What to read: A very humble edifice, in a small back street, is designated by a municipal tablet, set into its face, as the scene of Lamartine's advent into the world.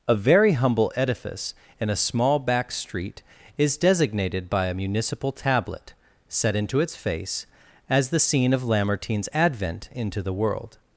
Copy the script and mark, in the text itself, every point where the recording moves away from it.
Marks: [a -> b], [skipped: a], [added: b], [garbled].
A very humble edifice, in a small back street, is designated by a municipal tablet, set into its face, as the scene of Lamartine's advent into the world.